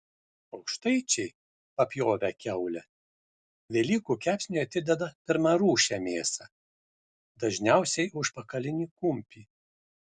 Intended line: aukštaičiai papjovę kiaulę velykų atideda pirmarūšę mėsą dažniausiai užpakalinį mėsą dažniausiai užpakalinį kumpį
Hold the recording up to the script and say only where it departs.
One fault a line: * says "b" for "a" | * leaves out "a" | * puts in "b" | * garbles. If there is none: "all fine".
* puts in "kepsniui"
* leaves out "mėsą dažniausiai užpakalinį"